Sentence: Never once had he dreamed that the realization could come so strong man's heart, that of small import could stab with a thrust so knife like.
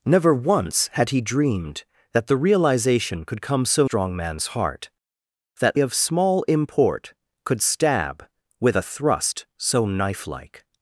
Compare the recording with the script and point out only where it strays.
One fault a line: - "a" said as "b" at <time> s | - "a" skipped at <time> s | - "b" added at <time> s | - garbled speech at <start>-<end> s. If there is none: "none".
none